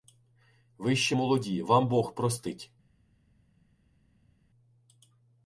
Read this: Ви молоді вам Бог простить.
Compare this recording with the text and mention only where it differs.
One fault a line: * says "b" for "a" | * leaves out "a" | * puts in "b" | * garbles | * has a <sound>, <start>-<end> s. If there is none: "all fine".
* puts in "ще"